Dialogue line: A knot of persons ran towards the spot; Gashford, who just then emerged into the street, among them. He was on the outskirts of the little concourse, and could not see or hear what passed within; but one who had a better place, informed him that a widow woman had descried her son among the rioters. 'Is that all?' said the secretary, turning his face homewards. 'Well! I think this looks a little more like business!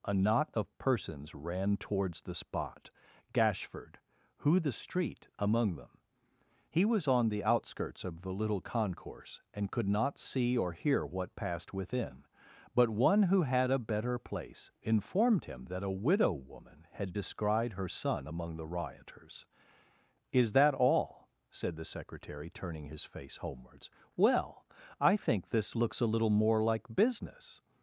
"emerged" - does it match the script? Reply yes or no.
no